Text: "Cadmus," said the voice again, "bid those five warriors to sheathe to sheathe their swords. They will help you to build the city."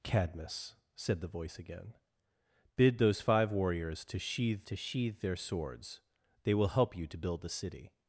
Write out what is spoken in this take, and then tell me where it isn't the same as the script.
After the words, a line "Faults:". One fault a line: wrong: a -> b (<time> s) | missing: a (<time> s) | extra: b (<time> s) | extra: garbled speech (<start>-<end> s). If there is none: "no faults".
"Cadmus," said the voice again, "bid those five warriors to sheathe to sheathe their swords. They will help you to build the city."
Faults:
no faults